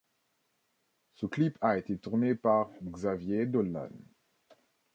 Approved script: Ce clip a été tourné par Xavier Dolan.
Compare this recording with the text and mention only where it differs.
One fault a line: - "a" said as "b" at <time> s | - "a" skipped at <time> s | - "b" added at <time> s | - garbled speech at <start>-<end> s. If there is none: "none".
none